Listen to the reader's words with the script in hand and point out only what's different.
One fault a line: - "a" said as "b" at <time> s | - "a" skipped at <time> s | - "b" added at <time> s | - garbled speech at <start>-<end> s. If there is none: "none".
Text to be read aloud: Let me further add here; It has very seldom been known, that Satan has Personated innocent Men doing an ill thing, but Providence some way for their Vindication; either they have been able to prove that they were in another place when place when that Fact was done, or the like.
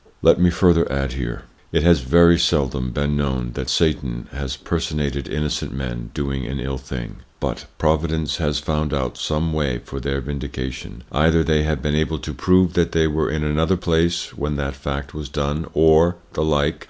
- "has found out" added at 8.4 s
- "place when" skipped at 14.6 s